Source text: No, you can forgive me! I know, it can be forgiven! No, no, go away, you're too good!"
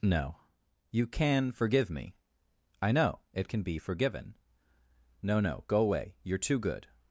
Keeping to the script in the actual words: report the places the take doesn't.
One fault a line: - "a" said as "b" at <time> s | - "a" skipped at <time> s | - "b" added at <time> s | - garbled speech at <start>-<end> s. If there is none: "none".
none